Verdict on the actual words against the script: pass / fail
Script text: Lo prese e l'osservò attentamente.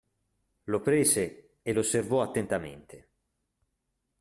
pass